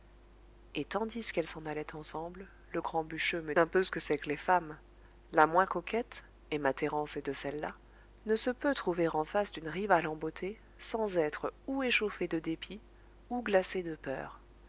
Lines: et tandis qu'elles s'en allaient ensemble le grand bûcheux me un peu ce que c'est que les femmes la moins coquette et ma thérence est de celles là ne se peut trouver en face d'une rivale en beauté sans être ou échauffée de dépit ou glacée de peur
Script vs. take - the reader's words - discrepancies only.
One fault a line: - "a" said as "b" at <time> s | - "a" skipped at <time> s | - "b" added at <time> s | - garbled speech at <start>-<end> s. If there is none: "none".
none